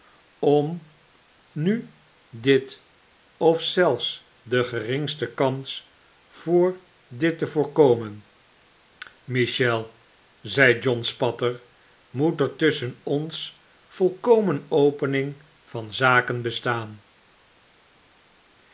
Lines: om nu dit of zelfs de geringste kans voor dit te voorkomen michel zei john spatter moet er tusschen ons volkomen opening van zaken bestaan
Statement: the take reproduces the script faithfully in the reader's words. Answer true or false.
true